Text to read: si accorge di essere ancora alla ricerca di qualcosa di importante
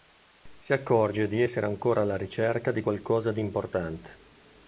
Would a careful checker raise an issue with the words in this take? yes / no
no